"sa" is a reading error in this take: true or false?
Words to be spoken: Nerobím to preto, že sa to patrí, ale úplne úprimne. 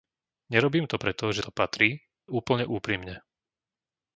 true